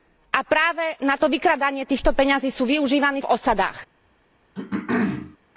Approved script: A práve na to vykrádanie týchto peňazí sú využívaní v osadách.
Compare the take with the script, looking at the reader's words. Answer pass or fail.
pass